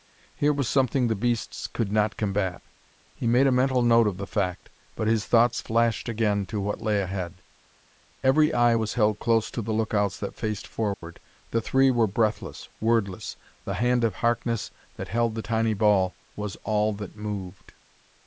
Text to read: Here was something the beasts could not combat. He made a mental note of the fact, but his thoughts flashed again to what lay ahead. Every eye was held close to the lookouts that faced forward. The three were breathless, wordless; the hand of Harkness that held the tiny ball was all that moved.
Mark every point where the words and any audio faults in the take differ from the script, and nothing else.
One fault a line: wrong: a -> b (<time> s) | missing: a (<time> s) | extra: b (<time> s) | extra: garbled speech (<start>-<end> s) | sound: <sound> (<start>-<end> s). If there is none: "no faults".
sound: dropout (10.9-11.0 s)